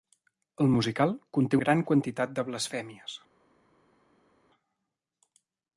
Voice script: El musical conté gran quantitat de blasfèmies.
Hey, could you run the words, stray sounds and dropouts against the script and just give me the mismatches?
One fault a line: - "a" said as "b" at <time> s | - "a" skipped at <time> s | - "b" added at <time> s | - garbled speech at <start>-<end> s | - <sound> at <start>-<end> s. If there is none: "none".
none